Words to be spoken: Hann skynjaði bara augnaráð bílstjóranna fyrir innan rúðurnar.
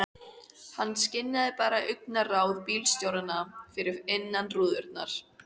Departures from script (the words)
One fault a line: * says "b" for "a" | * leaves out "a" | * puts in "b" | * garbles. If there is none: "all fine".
all fine